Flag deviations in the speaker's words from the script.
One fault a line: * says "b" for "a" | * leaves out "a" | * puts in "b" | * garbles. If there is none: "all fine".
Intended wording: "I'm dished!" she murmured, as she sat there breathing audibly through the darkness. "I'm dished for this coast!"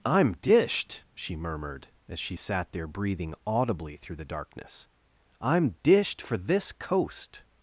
all fine